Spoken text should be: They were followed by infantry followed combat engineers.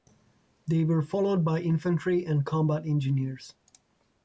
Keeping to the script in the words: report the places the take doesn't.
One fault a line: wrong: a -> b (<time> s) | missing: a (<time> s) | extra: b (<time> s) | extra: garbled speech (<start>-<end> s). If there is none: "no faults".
wrong: followed -> and (2.2 s)